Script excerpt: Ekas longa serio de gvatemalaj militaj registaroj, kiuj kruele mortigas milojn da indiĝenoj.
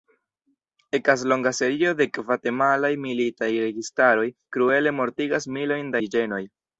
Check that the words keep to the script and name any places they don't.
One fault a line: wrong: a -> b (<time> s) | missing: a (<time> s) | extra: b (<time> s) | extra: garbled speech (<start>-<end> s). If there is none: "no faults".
missing: kiuj (4.3 s)
missing: da (6.0 s)